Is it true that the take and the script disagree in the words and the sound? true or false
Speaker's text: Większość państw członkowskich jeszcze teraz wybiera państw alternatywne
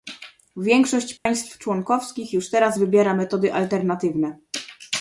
true